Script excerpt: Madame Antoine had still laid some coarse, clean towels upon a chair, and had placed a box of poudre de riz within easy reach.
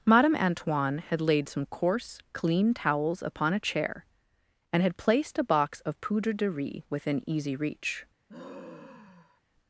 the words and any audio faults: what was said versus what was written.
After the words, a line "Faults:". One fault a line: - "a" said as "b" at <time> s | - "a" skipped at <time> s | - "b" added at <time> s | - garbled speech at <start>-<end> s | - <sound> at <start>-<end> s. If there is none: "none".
Madame Antoine had laid some coarse, clean towels upon a chair, and had placed a box of poudre de riz within easy reach.
Faults:
- "still" skipped at 1.2 s
- sigh at 8.3-9.4 s